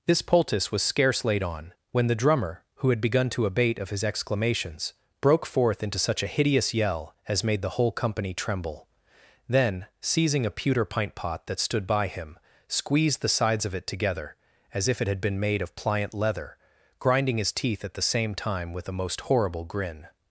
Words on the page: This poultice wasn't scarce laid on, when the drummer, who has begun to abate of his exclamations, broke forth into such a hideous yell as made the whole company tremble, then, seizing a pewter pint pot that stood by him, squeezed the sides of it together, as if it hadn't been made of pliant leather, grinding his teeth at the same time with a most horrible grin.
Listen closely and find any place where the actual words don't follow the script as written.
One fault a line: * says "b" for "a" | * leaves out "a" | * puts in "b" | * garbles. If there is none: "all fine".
* says "was" for "wasn't"
* says "had" for "has"
* says "had" for "hadn't"